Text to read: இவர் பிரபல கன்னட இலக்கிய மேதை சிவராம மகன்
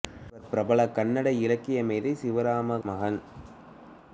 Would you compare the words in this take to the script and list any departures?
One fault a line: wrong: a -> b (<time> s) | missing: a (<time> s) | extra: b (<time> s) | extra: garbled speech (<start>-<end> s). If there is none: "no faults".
no faults